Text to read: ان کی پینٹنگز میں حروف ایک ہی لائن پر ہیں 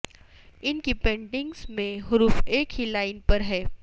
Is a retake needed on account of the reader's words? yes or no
no